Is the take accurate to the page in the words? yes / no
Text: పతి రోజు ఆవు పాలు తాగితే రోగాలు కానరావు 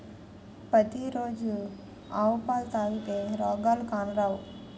yes